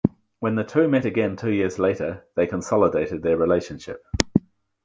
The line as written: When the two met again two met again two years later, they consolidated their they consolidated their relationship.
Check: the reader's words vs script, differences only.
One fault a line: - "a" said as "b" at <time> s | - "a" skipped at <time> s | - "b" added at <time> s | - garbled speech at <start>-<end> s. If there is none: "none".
- "met again two" skipped at 1.5 s
- "they consolidated their" skipped at 3.4 s